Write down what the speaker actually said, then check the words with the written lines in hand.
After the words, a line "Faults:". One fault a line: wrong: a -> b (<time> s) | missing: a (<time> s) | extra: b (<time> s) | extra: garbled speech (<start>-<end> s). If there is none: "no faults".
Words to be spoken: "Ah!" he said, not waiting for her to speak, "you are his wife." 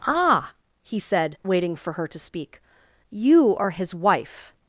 "Ah!" he said, waiting for her to speak, "you are his wife."
Faults:
missing: not (1.4 s)